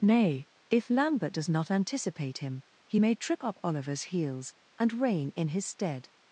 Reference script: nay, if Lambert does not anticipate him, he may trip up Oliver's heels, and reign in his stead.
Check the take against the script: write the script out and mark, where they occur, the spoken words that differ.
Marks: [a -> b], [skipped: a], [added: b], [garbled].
nay, if Lambert does not anticipate him, he may trip up Oliver's heels, and reign in his stead.